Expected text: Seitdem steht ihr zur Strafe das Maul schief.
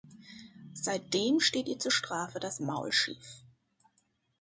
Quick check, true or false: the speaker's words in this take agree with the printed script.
true